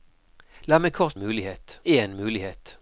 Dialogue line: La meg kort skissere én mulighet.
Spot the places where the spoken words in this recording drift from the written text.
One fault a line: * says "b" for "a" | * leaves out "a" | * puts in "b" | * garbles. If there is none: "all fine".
* says "mulighet" for "skissere"